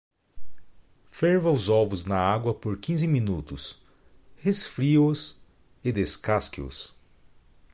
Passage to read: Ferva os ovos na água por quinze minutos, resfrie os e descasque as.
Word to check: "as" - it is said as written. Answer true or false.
false